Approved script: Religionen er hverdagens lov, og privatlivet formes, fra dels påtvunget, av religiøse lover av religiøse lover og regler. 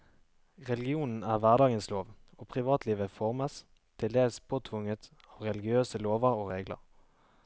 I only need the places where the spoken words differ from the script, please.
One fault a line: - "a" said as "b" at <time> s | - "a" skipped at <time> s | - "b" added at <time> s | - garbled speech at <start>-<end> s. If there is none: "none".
- "fra" said as "til" at 4.0 s
- "av religiøse lover" skipped at 6.4 s